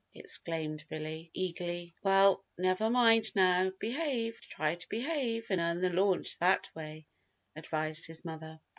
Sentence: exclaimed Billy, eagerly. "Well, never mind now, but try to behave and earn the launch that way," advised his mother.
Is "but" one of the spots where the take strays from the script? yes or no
yes